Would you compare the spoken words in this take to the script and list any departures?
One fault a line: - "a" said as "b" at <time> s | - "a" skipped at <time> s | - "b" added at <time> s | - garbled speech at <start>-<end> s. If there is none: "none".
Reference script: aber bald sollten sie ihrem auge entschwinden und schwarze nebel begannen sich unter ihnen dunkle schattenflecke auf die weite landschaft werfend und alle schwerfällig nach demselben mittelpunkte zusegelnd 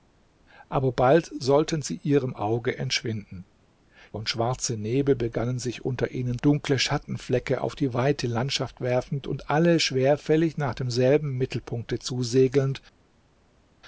none